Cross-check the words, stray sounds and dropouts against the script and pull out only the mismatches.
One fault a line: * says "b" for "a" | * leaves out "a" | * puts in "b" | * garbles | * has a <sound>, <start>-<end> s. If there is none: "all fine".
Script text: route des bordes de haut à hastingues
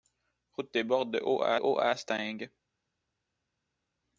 * puts in "haut à"